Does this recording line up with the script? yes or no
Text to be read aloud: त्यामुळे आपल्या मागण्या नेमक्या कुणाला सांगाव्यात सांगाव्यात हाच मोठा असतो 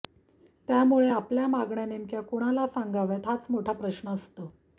no